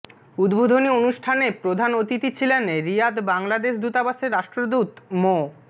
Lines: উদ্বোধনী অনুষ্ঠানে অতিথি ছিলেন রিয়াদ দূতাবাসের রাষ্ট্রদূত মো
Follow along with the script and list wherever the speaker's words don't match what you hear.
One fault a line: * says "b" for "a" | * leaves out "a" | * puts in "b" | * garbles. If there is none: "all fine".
* puts in "প্রধান"
* puts in "বাংলাদেশ"